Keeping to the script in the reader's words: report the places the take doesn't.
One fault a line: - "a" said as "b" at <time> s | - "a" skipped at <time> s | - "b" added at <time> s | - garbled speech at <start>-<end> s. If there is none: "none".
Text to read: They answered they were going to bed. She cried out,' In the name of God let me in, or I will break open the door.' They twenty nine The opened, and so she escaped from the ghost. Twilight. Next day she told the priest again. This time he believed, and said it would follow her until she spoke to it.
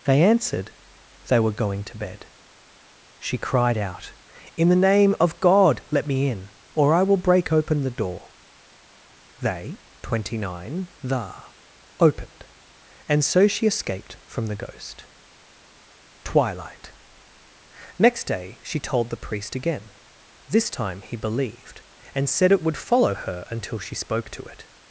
none